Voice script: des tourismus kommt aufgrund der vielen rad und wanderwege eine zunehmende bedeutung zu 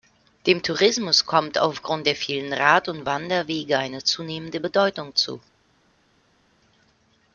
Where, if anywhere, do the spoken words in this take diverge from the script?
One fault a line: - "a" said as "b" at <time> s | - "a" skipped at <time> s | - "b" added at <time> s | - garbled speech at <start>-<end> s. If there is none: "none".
- "des" said as "dem" at 0.5 s